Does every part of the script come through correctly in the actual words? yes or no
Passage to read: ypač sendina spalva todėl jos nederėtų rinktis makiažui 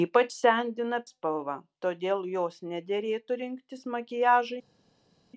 yes